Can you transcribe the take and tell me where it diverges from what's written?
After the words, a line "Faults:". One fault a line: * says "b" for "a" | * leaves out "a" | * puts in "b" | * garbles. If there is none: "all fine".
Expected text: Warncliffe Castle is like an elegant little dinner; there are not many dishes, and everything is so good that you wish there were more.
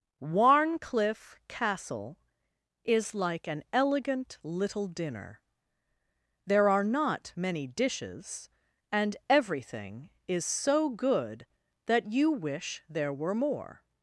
Warncliffe Castle is like an elegant little dinner; there are not many dishes, and everything is so good that you wish there were more.
Faults:
all fine